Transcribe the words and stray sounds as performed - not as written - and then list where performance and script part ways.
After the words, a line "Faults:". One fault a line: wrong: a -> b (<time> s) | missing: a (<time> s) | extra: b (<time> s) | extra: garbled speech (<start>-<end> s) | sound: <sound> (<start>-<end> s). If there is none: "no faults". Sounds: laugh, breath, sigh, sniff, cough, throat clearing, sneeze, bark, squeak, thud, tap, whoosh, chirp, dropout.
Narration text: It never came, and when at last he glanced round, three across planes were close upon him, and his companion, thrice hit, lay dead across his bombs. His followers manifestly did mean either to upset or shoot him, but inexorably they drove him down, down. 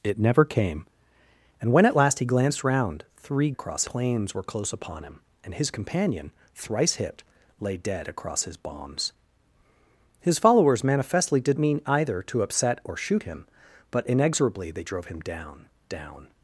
It never came, and when at last he glanced round, three across planes were close upon him, and his companion, thrice hit, lay dead across his bombs. His followers manifestly did mean either to upset or shoot him, but inexorably they drove him down, down.
Faults:
no faults